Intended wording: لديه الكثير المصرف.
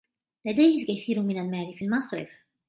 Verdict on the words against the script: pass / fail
fail